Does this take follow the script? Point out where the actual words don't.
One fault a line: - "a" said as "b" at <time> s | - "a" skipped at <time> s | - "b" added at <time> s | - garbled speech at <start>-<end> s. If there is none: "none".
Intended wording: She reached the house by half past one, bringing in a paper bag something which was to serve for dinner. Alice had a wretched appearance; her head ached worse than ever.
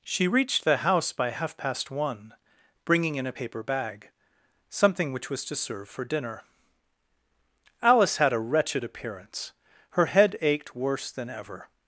none